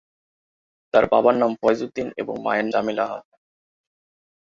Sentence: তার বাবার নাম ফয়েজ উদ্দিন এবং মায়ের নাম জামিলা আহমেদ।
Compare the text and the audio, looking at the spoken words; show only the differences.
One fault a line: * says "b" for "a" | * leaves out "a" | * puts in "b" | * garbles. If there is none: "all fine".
* leaves out "নাম"